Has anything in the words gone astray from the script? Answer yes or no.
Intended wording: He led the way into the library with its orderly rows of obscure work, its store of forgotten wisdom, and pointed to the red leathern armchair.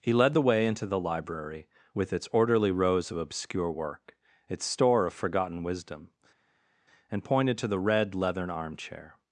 no